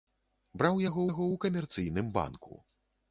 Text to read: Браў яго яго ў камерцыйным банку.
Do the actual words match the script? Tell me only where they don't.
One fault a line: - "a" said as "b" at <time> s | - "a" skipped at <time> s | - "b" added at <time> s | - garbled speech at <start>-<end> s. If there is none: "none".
none